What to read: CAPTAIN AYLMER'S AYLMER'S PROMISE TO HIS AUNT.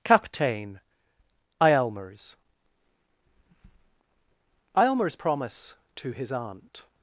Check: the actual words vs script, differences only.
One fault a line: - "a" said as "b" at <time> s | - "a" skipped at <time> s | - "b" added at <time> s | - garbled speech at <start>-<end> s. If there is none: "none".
none